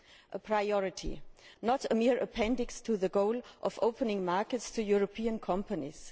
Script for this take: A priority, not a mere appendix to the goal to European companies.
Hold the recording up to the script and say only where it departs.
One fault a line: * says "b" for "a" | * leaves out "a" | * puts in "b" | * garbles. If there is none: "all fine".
* puts in "of opening markets"